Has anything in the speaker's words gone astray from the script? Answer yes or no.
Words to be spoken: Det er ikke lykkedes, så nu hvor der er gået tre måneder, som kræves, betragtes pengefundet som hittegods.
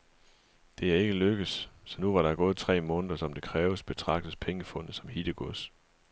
yes